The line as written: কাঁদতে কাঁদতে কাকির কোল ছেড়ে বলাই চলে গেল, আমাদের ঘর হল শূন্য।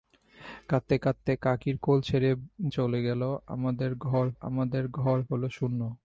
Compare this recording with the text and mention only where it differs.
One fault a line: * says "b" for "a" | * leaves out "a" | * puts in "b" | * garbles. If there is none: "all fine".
* leaves out "বলাই"
* puts in "আমাদের ঘর"